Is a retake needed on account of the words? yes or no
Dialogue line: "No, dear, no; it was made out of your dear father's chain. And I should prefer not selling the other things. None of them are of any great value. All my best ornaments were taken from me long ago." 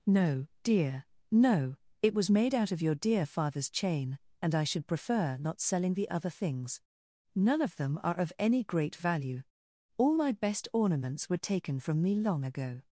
no